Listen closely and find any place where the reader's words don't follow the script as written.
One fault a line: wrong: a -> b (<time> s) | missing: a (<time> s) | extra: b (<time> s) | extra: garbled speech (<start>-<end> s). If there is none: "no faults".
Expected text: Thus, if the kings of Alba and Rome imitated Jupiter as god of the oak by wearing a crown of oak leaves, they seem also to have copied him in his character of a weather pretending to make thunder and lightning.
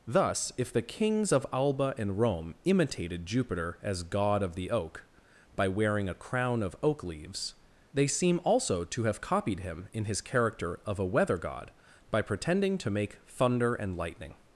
extra: god by (11.4 s)